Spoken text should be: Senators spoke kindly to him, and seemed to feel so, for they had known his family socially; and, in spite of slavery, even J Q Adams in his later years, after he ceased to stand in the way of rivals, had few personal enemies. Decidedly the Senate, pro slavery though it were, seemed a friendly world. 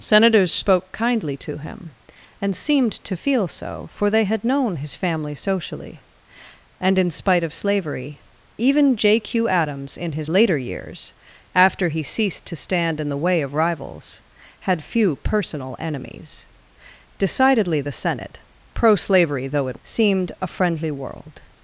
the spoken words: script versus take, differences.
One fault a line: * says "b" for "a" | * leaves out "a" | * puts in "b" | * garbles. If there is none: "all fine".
* leaves out "were"